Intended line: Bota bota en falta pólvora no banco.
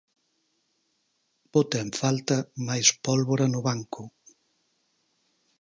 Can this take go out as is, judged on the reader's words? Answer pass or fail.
fail